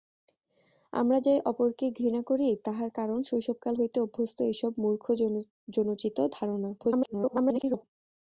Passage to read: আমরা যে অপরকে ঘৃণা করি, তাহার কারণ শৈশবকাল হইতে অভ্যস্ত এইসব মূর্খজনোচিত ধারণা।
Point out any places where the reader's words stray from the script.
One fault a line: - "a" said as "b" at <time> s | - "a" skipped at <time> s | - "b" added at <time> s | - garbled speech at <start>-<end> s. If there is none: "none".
- garbled speech at 6.8-7.8 s